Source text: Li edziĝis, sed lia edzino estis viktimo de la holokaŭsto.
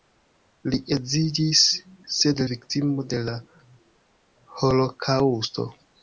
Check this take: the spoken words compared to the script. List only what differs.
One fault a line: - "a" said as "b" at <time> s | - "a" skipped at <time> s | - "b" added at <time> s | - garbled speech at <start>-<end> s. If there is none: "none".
- "lia edzino estis" skipped at 2.4 s